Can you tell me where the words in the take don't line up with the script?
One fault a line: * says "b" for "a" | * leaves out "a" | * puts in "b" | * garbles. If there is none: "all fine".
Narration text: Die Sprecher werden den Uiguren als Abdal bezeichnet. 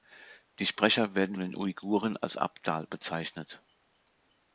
all fine